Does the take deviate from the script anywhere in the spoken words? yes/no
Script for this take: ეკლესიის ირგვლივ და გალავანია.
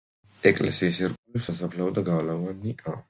yes